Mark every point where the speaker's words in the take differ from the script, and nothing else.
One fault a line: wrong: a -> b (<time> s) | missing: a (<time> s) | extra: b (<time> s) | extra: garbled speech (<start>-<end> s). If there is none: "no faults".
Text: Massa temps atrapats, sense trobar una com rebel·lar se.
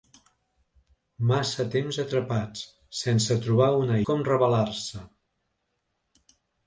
no faults